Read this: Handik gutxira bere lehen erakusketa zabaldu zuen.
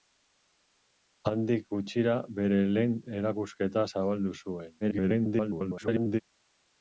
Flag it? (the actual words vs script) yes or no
yes